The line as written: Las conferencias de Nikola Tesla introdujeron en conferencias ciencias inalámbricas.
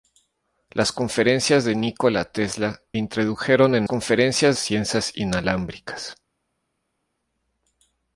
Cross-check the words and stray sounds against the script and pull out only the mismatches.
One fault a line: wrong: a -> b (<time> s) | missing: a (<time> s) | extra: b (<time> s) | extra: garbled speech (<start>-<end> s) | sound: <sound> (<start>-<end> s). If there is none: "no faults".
no faults